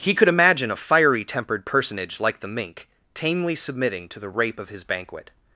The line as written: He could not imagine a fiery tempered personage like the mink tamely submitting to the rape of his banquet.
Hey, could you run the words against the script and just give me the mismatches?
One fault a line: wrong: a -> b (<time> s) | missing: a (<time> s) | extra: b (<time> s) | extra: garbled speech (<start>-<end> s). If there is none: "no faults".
missing: not (0.3 s)